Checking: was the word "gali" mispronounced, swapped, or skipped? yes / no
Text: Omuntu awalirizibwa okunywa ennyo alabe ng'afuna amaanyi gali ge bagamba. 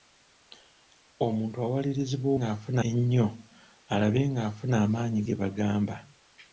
yes